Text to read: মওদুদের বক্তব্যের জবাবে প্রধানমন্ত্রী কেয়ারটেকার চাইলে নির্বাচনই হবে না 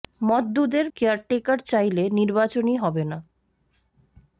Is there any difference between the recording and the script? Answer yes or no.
yes